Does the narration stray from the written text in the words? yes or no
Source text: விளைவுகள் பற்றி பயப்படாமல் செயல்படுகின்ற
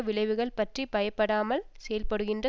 no